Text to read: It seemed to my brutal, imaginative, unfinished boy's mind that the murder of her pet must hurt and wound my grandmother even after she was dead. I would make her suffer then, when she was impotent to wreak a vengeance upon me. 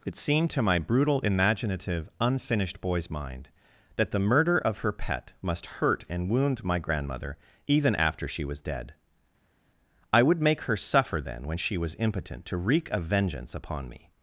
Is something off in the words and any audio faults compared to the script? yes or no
no